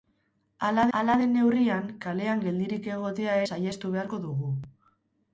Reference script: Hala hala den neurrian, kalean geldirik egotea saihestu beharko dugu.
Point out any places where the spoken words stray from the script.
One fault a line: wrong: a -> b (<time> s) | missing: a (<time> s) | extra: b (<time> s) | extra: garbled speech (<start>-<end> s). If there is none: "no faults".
no faults